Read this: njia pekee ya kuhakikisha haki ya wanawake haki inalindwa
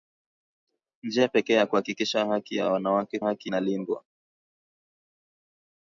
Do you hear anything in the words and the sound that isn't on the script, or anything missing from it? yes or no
no